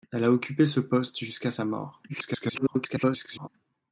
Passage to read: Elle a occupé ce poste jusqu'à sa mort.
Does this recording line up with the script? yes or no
no